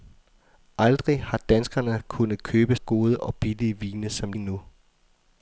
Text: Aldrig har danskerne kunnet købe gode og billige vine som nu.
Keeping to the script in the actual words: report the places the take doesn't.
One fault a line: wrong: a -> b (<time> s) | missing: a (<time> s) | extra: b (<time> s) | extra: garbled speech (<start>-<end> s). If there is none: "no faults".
no faults